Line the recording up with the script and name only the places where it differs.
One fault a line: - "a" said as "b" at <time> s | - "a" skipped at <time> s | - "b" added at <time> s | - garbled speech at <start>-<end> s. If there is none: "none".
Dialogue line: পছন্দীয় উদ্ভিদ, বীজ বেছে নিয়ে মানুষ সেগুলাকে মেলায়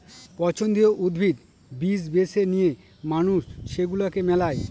none